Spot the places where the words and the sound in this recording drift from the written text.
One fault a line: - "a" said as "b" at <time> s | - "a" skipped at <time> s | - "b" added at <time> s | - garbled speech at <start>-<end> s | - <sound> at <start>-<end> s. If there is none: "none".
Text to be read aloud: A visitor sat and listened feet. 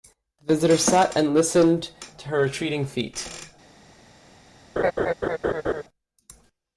- "A" said as "The" at 0.4 s
- "to her retreating" added at 2.2 s
- laugh at 4.8-5.8 s